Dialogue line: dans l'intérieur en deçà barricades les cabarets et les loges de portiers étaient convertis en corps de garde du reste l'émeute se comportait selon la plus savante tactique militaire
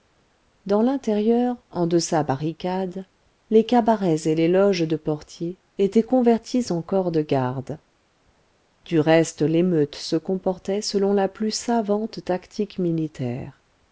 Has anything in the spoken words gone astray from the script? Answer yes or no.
no